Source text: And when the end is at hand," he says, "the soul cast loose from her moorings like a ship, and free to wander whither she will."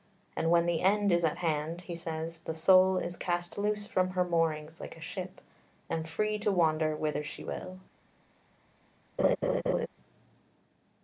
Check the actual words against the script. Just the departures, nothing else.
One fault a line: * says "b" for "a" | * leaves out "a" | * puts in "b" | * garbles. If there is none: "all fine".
* puts in "is"